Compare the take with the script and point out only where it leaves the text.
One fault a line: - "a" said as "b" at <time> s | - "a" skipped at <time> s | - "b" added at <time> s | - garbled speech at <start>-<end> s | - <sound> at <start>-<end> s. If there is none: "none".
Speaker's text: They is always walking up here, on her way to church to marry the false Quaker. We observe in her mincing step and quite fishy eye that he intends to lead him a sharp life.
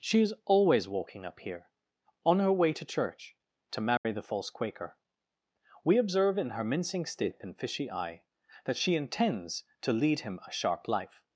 - "They" said as "She" at 0.0 s
- dropout at 4.0-4.0 s
- "quite" skipped at 7.5 s
- "he" said as "she" at 8.8 s